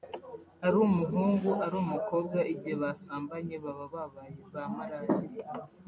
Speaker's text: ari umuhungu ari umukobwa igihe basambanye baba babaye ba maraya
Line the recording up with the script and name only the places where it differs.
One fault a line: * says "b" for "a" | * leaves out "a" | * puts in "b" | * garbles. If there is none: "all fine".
all fine